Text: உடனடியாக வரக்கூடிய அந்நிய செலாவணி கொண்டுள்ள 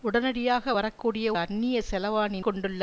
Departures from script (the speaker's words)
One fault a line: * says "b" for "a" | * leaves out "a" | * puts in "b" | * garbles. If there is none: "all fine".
all fine